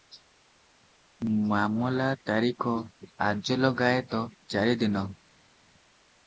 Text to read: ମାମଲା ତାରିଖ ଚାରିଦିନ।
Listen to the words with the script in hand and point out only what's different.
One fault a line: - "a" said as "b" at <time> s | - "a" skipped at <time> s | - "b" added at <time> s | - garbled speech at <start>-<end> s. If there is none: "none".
- "ଆଜଲଗାଏତ" added at 3.3 s